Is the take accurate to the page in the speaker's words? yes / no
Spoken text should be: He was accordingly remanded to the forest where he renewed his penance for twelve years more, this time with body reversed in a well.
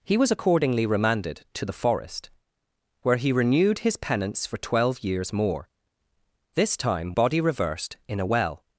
no